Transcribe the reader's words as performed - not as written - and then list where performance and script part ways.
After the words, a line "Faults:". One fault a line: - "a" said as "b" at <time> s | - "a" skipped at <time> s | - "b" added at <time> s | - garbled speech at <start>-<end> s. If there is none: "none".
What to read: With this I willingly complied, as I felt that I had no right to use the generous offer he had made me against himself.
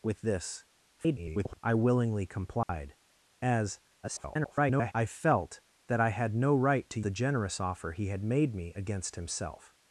With this [garbled] I willingly complied, as [garbled] I felt that I had no right to the generous offer he had made me against himself.
Faults:
- garbled speech at 1.0-1.6 s
- garbled speech at 4.0-4.9 s
- "use" skipped at 7.0 s